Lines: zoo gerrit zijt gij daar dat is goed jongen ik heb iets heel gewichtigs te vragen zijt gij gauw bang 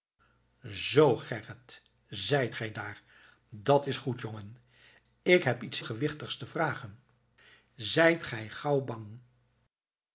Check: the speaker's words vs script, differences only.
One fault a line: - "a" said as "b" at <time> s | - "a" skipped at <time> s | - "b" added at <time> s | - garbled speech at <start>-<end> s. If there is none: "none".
- "heel" skipped at 5.8 s